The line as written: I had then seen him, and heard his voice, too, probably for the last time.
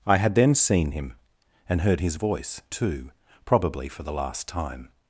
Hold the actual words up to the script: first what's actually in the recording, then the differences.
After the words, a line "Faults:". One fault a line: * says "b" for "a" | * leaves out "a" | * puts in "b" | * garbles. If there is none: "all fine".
I had then seen him, and heard his voice, too, probably for the last time.
Faults:
all fine